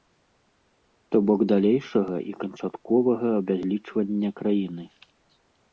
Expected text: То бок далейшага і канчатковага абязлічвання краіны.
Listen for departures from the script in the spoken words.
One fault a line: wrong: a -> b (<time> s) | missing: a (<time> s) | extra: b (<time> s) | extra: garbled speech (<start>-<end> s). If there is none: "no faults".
no faults